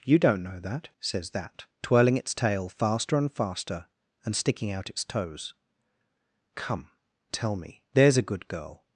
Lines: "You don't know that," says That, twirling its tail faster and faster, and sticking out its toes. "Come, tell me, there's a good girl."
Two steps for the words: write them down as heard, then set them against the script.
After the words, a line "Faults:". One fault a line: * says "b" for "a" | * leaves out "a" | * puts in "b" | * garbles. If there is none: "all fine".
"You don't know that," says That, twirling its tail faster and faster, and sticking out its toes. "Come, tell me, there's a good girl."
Faults:
all fine